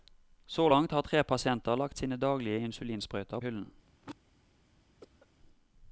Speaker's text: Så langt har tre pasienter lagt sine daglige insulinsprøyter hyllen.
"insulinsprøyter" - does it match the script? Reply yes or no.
yes